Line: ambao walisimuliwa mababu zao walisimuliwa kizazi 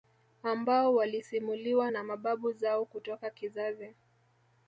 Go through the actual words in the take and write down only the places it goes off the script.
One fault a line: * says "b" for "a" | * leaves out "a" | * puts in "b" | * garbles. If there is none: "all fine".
* puts in "na"
* says "kutoka" for "walisimuliwa"